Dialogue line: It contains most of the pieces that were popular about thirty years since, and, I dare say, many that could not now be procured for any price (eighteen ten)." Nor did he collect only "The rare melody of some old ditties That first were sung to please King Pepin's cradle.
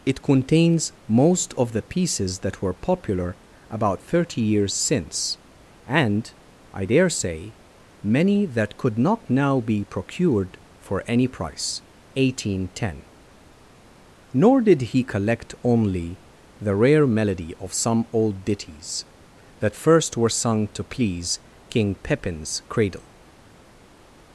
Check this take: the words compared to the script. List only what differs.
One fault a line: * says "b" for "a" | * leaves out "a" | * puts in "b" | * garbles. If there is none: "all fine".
all fine